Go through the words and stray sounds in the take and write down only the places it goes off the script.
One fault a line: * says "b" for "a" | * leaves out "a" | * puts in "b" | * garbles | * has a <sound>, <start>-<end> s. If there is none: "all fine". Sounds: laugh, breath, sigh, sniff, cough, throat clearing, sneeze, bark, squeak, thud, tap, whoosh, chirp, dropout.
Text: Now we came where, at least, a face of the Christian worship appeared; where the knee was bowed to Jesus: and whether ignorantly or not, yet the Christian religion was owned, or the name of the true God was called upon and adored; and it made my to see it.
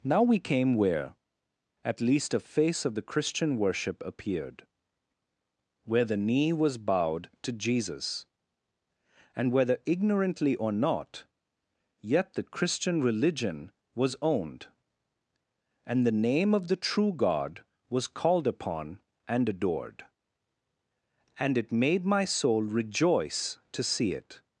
* says "and" for "or"
* puts in "soul rejoice"